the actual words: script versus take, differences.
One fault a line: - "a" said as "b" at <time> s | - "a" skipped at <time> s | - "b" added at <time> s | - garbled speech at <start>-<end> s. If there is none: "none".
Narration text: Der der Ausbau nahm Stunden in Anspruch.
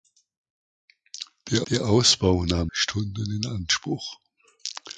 none